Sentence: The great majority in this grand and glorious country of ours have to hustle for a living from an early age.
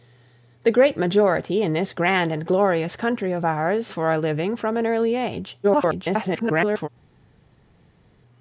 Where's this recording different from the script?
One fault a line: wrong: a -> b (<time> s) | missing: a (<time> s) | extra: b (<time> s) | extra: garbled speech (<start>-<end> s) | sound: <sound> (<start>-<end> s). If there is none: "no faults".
missing: have to hustle (3.9 s)
extra: garbled speech (5.6-6.9 s)